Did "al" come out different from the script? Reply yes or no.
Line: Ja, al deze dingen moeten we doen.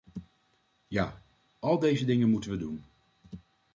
no